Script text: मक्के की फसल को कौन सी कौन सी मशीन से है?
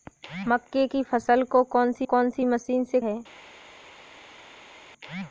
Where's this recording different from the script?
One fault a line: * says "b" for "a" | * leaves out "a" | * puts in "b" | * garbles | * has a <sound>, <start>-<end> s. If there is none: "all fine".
all fine